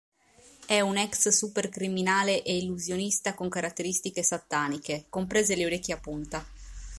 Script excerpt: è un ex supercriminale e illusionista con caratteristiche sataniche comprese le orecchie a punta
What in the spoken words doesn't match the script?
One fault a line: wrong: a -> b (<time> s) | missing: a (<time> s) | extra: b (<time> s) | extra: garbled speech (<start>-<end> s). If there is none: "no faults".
no faults